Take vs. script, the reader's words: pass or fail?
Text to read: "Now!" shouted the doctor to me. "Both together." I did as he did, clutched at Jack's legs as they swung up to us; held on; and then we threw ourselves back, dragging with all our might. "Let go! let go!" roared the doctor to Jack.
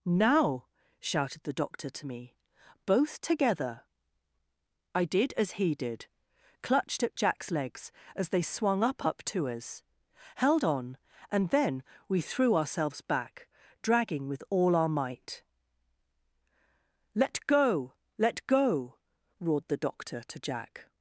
fail